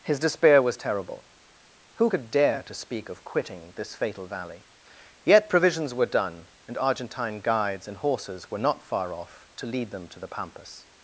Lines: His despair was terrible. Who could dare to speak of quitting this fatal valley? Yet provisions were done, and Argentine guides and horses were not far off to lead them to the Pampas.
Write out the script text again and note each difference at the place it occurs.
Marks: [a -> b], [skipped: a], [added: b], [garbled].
His despair was terrible. Who could dare to speak of quitting this fatal valley? Yet provisions were done, and Argentine guides and horses were not far off to lead them to the Pampas.